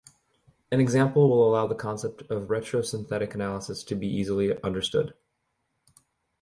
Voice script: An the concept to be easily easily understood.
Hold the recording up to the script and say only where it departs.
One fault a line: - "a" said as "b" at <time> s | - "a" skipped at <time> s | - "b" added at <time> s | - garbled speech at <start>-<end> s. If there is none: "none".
- "example will allow" added at 0.8 s
- "of retrosynthetic analysis" added at 2.3 s
- "easily" skipped at 4.6 s